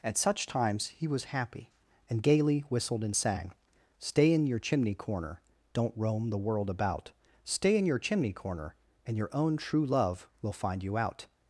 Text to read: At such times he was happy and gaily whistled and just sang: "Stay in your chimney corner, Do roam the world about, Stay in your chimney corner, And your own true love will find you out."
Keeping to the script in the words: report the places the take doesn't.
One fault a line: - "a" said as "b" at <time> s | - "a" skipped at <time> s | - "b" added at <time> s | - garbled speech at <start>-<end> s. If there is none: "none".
- "just" skipped at 3.1 s
- "Do" said as "Don't" at 5.7 s